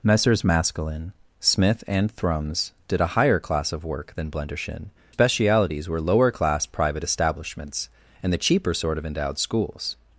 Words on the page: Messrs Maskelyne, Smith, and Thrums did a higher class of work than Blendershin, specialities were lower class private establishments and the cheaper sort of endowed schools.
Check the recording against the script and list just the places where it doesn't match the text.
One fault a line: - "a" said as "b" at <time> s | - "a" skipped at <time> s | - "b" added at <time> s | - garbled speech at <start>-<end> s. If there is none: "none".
none